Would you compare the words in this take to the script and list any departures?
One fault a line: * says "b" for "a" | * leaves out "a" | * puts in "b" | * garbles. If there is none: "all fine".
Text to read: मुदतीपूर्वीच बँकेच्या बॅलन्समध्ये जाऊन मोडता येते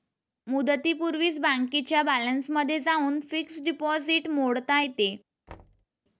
* puts in "फिक्स्ड डिपॉझिट"